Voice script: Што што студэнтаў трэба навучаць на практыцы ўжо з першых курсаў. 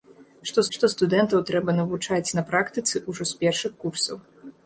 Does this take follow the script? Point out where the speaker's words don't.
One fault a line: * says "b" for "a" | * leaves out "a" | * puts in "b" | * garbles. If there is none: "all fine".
all fine